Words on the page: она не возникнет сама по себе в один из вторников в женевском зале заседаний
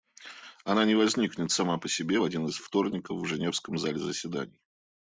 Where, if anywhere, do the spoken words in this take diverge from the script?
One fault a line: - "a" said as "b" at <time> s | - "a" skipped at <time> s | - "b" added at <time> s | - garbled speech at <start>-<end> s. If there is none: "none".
none